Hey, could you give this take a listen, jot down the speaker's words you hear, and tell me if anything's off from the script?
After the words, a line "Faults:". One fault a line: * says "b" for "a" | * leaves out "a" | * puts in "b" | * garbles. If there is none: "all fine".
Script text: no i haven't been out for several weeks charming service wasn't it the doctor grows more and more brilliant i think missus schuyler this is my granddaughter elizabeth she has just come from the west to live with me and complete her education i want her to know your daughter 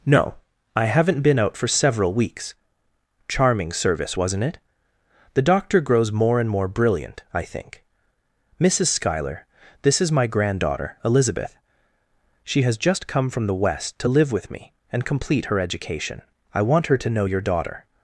no i haven't been out for several weeks charming service wasn't it the doctor grows more and more brilliant i think missus schuyler this is my granddaughter elizabeth she has just come from the west to live with me and complete her education i want her to know your daughter
Faults:
all fine